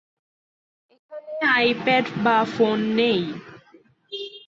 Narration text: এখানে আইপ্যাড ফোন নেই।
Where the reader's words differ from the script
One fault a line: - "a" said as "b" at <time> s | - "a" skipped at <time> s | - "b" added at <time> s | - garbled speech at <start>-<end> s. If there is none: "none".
- "বা" added at 2.2 s